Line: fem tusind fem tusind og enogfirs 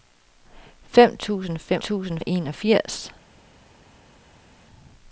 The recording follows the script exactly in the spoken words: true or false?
true